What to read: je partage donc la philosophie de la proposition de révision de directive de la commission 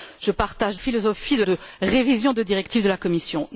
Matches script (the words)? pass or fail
fail